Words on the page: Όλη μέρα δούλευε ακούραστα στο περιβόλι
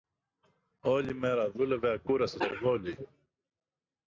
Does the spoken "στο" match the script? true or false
false